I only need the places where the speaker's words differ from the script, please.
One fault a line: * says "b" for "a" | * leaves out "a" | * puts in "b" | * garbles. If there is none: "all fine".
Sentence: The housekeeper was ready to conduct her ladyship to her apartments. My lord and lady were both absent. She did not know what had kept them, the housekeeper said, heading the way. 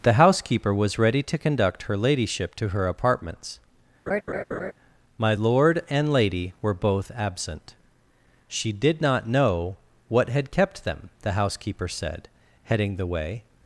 all fine